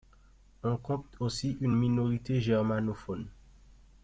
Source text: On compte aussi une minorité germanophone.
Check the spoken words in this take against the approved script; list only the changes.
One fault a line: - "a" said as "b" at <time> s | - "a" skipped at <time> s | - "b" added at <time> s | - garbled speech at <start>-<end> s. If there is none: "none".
none